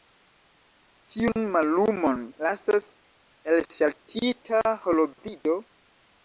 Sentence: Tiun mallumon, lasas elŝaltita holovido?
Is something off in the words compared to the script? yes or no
no